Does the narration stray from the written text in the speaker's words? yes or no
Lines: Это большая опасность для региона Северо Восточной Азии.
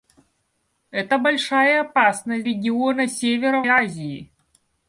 yes